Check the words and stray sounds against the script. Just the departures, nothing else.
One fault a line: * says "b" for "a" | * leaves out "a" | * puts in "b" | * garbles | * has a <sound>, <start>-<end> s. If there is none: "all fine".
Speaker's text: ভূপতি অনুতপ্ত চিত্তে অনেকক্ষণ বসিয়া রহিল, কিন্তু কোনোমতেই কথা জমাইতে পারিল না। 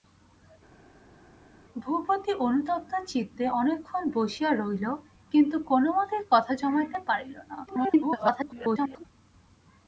* garbles